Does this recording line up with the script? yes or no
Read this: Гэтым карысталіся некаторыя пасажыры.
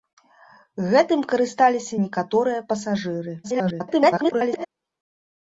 no